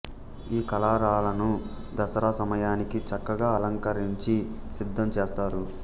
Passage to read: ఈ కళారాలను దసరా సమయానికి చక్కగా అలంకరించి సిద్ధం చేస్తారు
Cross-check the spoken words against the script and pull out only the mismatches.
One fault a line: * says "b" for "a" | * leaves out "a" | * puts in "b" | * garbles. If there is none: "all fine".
all fine